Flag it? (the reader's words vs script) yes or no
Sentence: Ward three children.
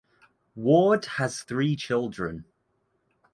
yes